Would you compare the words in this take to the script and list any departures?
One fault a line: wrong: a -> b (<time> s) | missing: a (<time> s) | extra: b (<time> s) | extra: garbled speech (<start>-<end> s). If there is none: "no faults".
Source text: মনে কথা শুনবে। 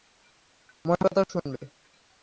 no faults